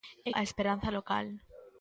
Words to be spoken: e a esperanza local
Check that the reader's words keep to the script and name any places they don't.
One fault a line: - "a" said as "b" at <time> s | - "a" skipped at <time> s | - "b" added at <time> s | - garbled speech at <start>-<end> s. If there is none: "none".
none